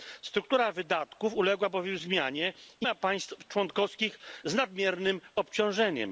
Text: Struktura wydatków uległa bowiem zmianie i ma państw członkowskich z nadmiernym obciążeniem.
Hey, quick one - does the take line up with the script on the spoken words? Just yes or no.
yes